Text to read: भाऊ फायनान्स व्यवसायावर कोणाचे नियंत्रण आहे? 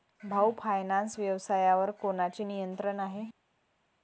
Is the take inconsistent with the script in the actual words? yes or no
no